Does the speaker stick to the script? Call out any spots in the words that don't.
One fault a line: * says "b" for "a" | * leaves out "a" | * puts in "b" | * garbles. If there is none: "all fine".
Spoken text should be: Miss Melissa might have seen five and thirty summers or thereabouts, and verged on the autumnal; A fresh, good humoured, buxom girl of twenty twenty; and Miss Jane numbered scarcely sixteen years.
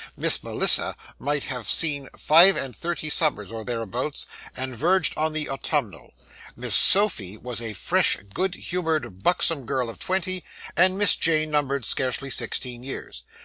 * puts in "Miss Sophy was"
* leaves out "twenty"